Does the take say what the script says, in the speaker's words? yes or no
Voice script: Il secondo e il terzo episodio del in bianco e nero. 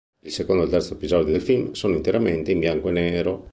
no